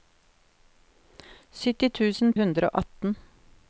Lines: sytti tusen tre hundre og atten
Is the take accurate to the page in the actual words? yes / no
no